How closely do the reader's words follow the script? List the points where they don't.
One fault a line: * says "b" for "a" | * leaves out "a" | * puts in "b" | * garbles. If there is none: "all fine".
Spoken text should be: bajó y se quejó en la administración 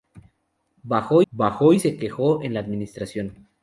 * puts in "bajó"